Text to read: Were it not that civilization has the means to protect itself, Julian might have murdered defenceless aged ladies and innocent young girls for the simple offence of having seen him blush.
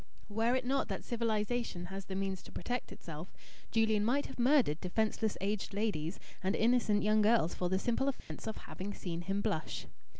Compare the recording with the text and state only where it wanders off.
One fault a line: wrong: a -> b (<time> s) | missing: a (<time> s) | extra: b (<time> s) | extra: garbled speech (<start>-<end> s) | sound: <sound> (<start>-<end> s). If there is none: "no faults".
sound: dropout (8.2-8.3 s)